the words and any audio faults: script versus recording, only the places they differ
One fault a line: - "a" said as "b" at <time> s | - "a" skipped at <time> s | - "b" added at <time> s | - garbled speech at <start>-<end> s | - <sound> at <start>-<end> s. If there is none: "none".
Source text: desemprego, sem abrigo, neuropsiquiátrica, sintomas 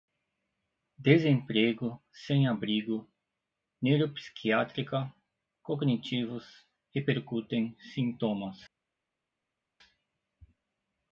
- "cognitivos repercutem" added at 5.6 s